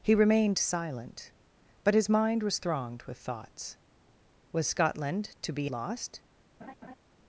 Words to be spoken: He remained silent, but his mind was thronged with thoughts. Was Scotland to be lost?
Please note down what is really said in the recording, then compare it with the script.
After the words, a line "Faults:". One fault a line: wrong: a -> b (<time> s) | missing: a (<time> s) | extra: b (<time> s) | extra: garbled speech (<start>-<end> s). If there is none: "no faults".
He remained silent, but his mind was thronged with thoughts. Was Scotland to be lost?
Faults:
no faults